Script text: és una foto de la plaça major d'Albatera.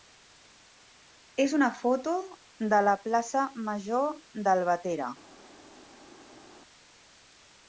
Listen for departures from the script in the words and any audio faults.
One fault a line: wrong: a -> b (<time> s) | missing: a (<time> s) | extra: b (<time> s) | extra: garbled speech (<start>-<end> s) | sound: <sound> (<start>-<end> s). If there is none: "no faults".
no faults